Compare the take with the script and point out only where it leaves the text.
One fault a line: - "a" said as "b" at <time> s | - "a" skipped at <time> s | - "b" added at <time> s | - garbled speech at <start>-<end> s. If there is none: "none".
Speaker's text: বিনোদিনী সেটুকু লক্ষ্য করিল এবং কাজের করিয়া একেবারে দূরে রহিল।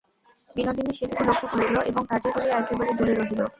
none